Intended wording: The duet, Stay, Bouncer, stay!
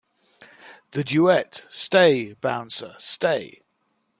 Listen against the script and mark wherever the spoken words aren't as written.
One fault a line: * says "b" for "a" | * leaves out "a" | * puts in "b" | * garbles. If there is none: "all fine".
all fine